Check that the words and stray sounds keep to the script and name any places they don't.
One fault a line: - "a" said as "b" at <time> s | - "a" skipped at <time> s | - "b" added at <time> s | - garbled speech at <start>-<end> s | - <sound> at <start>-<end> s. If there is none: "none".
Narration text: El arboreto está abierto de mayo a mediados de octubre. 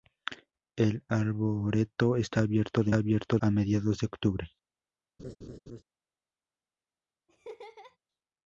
- "mayo" said as "abierto" at 2.9 s
- laugh at 5.2-5.8 s
- laugh at 7.3-8.0 s